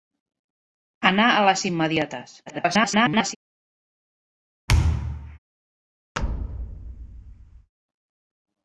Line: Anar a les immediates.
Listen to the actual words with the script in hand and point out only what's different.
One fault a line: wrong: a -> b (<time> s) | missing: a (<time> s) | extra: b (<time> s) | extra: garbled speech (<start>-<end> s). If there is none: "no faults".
extra: garbled speech (2.5-3.4 s)